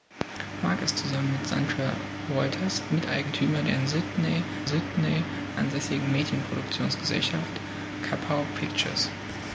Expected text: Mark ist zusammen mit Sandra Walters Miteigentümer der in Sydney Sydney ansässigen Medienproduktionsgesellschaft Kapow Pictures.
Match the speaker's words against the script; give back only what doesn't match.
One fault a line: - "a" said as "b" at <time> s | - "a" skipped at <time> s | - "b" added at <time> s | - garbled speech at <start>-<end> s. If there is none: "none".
none